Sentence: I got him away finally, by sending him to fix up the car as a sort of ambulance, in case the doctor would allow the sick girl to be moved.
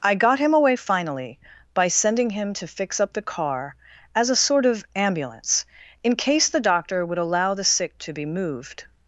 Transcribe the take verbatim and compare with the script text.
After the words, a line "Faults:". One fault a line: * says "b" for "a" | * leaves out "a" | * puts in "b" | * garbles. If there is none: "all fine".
I got him away finally, by sending him to fix up the car as a sort of ambulance, in case the doctor would allow the sick to be moved.
Faults:
* leaves out "girl"